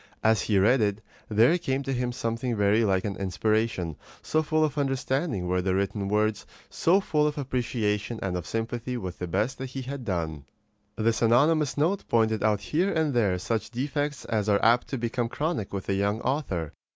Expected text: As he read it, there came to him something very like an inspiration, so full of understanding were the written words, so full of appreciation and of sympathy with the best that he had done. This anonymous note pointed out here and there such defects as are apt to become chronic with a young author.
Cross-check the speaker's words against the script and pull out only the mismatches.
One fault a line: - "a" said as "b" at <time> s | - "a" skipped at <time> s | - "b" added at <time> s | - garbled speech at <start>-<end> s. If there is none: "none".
none